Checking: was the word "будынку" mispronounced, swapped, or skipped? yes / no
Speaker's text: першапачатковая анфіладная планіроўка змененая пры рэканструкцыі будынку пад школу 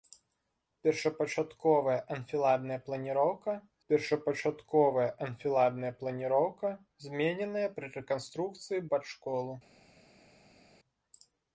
yes